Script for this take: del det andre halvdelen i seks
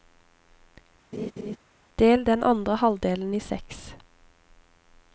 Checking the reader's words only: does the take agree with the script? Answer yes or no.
no